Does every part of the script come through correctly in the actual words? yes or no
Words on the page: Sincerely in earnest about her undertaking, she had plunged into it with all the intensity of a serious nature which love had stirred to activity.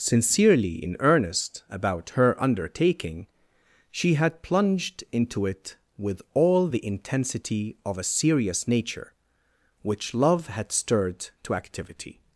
yes